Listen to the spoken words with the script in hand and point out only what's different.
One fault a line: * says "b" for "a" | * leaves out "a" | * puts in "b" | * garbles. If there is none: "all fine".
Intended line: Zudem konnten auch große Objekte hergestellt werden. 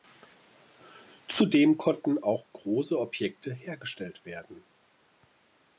all fine